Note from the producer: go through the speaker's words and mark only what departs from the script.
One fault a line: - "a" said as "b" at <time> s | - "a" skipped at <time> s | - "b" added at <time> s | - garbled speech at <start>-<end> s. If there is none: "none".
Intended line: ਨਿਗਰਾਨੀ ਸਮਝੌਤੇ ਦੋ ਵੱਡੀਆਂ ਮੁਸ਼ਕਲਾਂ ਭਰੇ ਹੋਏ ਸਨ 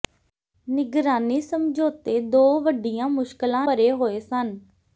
none